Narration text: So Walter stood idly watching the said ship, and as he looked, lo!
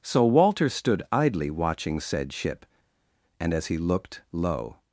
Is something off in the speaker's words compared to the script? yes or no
yes